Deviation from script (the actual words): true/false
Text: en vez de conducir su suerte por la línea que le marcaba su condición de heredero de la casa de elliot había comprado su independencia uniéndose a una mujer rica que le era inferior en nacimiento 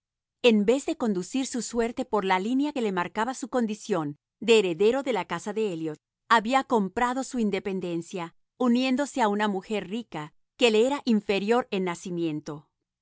false